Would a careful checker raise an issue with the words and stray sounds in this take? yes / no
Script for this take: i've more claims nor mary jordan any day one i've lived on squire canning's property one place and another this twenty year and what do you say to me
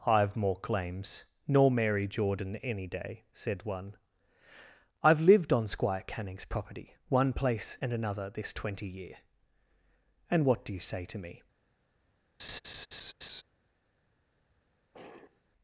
yes